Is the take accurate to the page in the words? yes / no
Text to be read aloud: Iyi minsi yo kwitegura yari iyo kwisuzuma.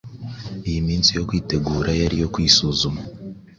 yes